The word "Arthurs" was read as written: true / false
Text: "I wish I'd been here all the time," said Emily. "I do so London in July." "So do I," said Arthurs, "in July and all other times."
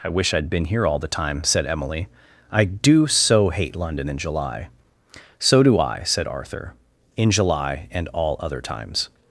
false